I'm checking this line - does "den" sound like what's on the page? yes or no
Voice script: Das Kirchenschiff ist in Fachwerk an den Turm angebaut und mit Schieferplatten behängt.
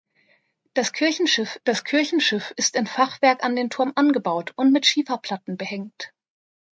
yes